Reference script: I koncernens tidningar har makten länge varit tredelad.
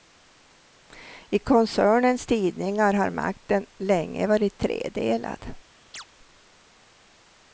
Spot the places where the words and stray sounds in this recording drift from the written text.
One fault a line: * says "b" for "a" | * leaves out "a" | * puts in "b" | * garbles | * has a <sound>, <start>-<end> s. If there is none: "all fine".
* has a chirp, 5.9-6.0 s